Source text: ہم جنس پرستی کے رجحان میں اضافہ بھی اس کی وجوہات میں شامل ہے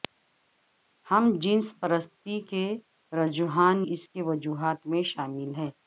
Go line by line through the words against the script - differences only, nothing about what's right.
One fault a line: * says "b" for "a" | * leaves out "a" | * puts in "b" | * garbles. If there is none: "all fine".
* leaves out "میں اضافہ بھی"